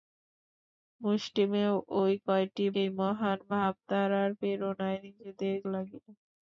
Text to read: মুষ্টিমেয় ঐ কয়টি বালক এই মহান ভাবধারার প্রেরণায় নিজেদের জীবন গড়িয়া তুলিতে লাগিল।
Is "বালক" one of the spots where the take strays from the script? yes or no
yes